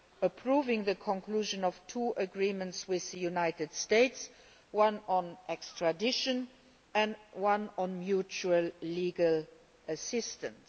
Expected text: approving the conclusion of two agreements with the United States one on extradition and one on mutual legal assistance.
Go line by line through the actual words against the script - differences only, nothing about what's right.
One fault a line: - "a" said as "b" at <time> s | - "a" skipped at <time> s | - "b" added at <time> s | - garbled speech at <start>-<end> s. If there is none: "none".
none